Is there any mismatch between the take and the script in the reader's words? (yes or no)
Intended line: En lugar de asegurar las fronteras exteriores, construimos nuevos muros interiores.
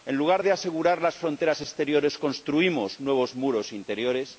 no